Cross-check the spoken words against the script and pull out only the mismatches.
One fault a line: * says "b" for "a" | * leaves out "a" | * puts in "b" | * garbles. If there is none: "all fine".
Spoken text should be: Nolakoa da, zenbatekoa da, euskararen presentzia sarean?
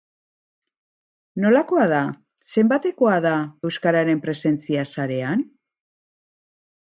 all fine